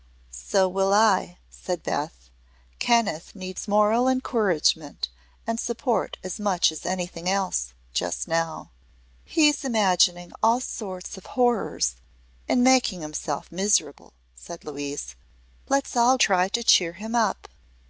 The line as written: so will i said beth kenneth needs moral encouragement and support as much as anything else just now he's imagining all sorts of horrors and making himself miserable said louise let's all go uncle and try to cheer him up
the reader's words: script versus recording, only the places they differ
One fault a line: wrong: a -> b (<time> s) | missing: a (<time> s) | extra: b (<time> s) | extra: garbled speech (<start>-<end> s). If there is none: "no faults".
missing: go uncle and (16.2 s)